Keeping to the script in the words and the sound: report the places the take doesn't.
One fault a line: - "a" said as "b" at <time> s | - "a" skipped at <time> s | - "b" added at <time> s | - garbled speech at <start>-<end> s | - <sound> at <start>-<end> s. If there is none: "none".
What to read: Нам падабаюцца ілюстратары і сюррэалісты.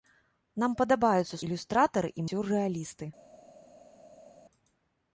none